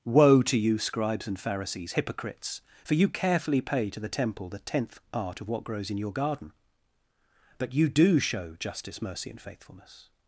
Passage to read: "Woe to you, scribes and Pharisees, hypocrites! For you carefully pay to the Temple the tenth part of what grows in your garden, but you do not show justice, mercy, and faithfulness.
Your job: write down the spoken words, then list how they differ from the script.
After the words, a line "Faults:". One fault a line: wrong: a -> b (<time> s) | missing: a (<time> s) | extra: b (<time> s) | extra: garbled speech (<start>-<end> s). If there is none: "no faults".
"Woe to you, scribes and Pharisees, hypocrites! For you carefully pay to the Temple the tenth part of what grows in your garden, but you do show justice, mercy, and faithfulness.
Faults:
missing: not (8.2 s)